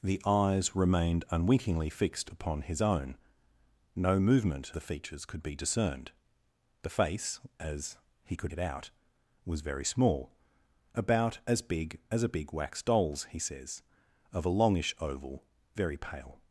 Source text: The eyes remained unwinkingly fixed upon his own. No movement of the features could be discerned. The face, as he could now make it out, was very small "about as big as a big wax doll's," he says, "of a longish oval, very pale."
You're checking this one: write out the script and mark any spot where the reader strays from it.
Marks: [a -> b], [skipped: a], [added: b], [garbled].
The eyes remained unwinkingly fixed upon his own. No movement [skipped: of] the features could be discerned. The face, as he could [skipped: now make] it out, was very small "about as big as a big wax doll's," he says, "of a longish oval, very pale."